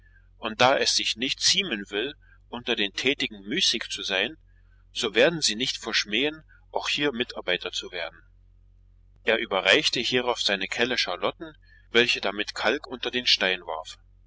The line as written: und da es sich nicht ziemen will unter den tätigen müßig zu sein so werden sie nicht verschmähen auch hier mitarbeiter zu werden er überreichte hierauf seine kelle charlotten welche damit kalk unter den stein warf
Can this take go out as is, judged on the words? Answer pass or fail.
pass